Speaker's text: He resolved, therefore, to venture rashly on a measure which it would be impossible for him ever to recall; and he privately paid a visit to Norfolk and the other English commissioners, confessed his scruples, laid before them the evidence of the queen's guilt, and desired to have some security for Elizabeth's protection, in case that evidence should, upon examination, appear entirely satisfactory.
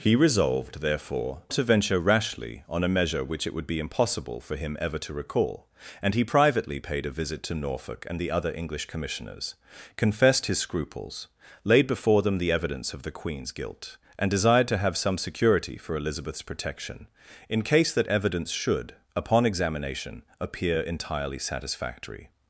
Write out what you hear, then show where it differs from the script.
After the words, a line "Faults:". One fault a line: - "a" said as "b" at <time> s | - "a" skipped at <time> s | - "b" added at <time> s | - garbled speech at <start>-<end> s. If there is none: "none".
He resolved, therefore, to venture rashly on a measure which it would be impossible for him ever to recall; and he privately paid a visit to Norfolk and the other English commissioners, confessed his scruples, laid before them the evidence of the queen's guilt, and desired to have some security for Elizabeth's protection, in case that evidence should, upon examination, appear entirely satisfactory.
Faults:
none